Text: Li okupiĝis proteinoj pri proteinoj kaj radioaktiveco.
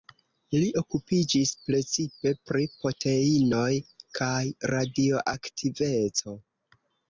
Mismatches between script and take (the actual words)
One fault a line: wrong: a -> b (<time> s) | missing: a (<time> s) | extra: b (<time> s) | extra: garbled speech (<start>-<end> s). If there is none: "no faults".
wrong: proteinoj -> precipe (1.7 s)